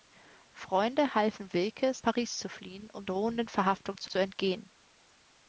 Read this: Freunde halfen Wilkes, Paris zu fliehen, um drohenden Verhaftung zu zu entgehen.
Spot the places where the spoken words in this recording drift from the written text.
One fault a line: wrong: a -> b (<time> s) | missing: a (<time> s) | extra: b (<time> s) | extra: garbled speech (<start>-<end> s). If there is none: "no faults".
no faults